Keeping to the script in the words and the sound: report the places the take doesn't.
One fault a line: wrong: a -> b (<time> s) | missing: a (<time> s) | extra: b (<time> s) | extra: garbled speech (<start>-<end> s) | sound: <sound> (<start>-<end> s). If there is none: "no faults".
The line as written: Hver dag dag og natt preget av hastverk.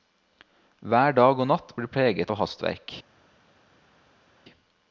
missing: dag (1.4 s)
extra: blir (1.8 s)